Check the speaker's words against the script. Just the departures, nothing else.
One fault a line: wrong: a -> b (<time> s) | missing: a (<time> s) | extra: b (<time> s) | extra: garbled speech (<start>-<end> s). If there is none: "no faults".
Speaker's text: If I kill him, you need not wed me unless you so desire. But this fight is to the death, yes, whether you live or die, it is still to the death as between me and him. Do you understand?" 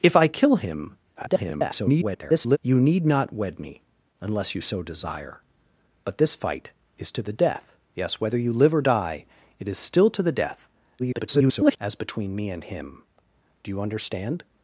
extra: garbled speech (1.1-2.6 s)
extra: garbled speech (11.0-11.8 s)